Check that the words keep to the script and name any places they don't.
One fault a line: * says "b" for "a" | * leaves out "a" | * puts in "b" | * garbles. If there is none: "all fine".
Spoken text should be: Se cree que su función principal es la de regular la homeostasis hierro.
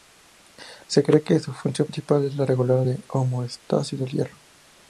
* puts in "del"